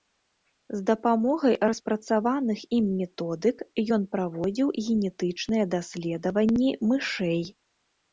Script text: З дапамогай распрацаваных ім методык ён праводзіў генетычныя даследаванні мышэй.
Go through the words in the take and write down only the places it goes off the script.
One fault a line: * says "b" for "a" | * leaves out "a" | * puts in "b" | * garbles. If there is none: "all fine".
all fine